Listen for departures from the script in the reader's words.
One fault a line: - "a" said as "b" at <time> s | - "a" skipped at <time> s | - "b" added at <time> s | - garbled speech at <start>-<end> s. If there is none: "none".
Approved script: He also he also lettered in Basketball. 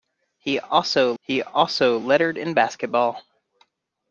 none